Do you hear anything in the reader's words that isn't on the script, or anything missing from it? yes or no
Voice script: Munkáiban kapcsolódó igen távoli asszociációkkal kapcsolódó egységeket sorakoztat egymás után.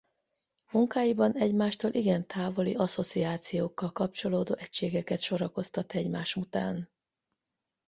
yes